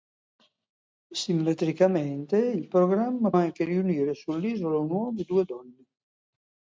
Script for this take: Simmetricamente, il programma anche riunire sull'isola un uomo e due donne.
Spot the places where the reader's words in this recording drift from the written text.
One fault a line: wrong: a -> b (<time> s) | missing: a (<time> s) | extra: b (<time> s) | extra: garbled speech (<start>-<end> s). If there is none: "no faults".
no faults